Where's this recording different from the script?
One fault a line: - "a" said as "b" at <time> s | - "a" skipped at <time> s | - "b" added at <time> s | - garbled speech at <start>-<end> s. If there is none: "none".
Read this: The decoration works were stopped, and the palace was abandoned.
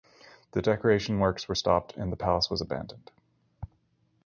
none